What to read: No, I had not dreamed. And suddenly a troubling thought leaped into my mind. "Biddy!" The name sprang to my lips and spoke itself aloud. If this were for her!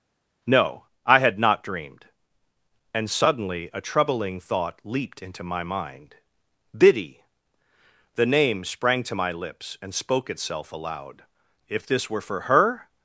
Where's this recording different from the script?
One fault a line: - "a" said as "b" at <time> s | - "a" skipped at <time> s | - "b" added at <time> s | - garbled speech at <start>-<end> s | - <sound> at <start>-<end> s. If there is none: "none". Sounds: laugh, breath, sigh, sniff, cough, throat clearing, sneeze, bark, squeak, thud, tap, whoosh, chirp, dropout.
none